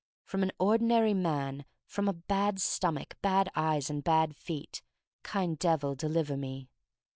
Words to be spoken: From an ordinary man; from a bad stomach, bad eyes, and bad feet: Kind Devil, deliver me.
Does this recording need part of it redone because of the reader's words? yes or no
no